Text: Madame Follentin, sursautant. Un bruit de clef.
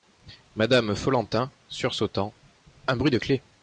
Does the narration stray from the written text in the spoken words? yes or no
no